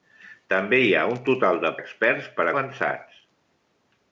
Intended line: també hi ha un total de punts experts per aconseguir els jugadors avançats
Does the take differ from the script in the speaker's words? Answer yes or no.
yes